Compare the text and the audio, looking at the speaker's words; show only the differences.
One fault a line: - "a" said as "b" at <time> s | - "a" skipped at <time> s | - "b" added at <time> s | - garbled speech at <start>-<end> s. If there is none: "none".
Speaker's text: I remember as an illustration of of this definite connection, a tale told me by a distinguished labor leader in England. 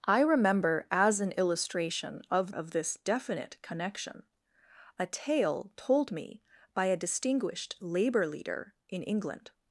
none